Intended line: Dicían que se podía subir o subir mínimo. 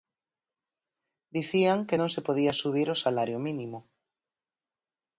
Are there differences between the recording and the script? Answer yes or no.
yes